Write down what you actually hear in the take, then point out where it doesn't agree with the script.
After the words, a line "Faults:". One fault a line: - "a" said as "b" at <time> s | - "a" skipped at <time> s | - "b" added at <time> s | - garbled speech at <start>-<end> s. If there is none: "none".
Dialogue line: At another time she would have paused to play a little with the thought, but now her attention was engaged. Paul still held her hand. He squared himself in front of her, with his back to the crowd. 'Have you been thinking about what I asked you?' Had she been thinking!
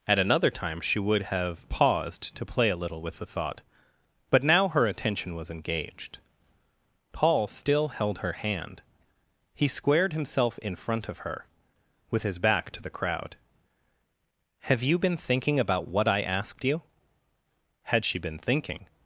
At another time she would have paused to play a little with the thought, but now her attention was engaged. Paul still held her hand. He squared himself in front of her, with his back to the crowd. 'Have you been thinking about what I asked you?' Had she been thinking!
Faults:
none